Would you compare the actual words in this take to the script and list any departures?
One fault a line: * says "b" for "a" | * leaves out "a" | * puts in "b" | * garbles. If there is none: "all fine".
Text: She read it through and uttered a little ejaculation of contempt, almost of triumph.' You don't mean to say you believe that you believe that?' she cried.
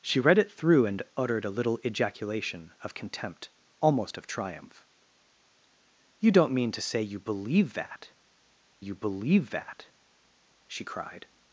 all fine